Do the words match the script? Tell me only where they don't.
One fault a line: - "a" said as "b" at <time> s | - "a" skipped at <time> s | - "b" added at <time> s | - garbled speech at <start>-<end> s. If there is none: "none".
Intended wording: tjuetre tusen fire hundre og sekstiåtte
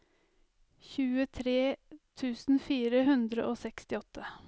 none